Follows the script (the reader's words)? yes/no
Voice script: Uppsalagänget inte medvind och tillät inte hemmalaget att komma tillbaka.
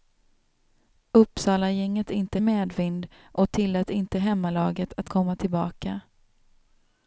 yes